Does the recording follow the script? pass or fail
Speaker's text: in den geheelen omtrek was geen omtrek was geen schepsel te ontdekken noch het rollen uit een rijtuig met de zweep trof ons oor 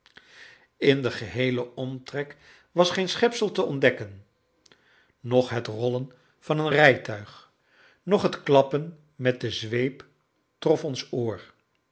fail